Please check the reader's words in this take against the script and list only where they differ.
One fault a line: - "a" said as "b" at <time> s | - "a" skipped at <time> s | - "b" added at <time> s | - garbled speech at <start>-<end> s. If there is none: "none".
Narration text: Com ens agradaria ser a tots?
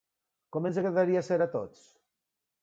none